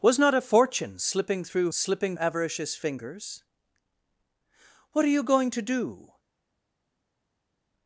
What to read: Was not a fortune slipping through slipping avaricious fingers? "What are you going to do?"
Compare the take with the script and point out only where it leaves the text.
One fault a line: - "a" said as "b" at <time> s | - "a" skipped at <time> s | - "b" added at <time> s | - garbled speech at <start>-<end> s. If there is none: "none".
none